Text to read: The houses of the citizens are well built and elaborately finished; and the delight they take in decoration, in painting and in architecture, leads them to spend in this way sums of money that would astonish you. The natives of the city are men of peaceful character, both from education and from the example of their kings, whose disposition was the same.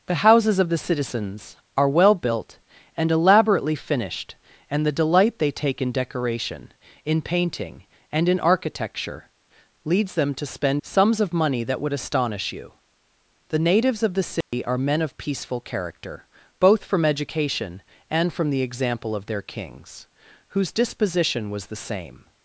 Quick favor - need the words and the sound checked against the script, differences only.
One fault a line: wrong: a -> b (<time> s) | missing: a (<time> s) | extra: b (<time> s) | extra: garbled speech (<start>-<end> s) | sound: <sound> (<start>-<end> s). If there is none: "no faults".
missing: in this way (10.8 s)
sound: dropout (14.4-14.5 s)